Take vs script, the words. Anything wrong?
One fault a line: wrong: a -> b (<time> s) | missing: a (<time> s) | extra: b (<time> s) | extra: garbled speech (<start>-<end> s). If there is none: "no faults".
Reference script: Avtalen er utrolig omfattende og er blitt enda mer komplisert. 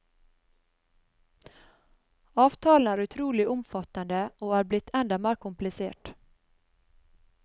no faults